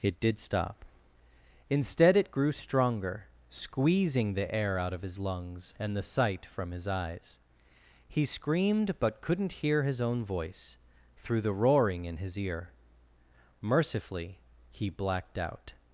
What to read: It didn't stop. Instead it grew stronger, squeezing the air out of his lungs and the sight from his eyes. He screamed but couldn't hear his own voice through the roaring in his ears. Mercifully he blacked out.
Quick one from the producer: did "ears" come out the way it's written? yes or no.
no